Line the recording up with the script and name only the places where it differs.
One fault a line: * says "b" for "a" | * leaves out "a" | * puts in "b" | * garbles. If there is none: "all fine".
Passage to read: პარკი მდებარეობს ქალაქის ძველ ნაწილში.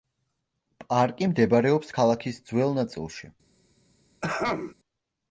all fine